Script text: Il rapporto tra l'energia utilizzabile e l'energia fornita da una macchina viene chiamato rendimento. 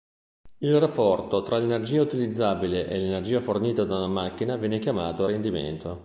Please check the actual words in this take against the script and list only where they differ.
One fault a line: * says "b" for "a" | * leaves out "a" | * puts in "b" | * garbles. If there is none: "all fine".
all fine